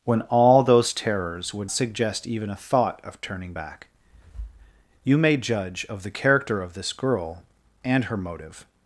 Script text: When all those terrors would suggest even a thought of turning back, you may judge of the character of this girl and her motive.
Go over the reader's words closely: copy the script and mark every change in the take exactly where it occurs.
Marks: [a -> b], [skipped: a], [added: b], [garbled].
When all those terrors would suggest even a thought of turning back, you may judge of the character of this girl and her motive.